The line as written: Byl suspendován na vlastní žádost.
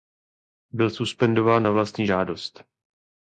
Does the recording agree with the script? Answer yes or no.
yes